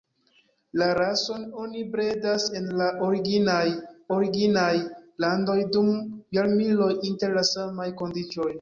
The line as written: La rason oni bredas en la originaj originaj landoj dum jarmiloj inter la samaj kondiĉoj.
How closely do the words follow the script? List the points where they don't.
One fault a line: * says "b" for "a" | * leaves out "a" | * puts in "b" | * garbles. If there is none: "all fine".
all fine